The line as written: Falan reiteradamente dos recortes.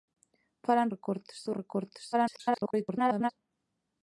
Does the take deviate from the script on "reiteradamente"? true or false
true